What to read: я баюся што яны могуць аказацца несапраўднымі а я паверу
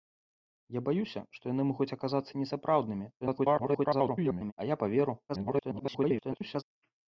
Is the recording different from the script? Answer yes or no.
yes